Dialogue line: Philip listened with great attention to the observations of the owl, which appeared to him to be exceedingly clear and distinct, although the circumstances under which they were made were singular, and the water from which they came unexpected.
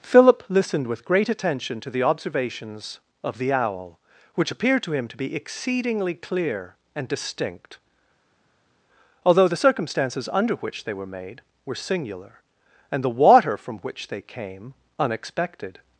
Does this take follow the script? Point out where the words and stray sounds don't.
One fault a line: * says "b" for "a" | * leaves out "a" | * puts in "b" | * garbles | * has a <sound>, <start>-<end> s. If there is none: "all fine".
all fine